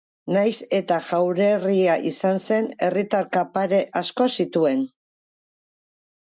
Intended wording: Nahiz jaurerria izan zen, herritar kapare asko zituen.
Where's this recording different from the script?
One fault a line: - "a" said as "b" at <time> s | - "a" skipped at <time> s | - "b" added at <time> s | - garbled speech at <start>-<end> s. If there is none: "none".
- "eta" added at 0.8 s